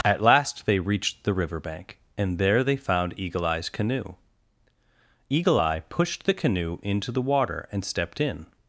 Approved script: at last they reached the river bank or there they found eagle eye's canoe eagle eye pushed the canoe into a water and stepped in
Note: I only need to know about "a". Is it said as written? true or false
false